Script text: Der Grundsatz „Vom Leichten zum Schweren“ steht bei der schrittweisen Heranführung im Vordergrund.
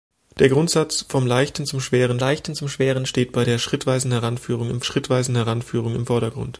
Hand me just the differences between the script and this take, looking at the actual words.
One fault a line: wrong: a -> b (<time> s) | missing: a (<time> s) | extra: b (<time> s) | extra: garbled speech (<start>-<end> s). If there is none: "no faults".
extra: Leichten zum Schweren (2.2 s)
extra: schrittweisen Heranführung im (4.8 s)